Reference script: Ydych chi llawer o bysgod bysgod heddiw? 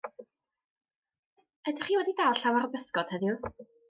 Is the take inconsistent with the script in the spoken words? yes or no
yes